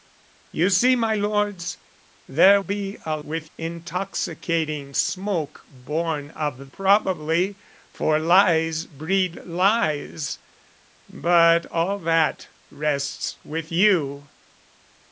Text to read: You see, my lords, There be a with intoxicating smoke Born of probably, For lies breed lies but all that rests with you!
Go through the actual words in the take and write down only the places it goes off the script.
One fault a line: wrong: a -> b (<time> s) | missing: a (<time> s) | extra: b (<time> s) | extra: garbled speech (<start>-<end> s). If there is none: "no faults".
no faults